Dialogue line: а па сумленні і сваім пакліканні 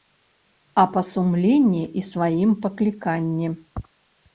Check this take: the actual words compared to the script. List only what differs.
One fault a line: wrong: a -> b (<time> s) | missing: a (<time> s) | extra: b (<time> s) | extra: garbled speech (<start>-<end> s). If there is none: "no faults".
no faults